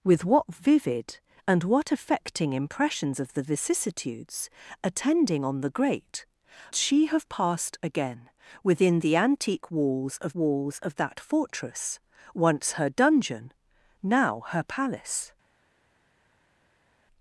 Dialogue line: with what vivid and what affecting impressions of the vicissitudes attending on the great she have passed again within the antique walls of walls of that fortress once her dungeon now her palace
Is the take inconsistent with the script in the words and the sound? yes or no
no